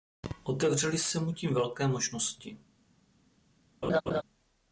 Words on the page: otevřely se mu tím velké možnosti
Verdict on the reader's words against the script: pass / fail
pass